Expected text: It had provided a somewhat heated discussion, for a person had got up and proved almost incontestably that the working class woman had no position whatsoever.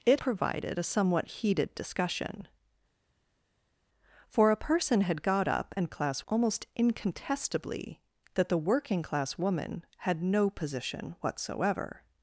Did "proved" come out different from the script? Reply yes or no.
yes